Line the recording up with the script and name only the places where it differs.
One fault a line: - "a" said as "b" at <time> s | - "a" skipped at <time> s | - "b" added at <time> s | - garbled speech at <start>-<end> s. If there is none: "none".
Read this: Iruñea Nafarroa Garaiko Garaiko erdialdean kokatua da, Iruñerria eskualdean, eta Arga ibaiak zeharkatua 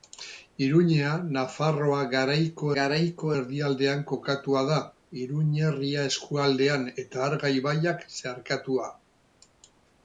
none